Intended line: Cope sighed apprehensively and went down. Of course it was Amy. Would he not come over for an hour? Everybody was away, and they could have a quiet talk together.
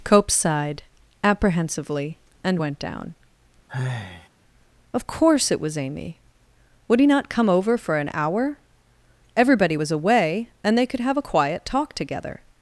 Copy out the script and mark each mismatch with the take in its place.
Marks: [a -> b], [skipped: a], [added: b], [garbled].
Cope sighed apprehensively and went down. Of course it was Amy. Would he not come over for an hour? Everybody was away, and they could have a quiet talk together.